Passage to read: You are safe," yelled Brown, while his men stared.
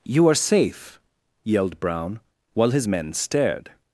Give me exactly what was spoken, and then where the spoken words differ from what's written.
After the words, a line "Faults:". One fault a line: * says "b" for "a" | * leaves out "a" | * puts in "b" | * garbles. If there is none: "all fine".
You are safe," yelled Brown, while his men stared.
Faults:
all fine